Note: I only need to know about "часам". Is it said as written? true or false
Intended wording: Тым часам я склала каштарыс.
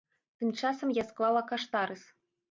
true